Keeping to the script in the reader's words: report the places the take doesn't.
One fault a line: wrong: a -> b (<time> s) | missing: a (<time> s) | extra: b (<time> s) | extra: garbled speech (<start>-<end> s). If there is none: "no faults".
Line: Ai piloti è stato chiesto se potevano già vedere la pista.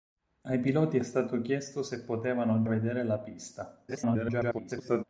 missing: già (2.6 s)
extra: garbled speech (3.9-5.0 s)